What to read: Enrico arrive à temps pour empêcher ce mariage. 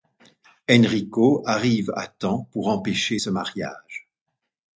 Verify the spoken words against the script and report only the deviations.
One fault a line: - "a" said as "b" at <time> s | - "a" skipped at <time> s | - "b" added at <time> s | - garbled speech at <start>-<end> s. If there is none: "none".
none